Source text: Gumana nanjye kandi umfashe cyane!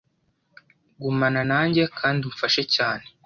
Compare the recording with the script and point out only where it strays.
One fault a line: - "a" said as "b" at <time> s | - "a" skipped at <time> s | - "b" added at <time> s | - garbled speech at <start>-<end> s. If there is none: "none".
none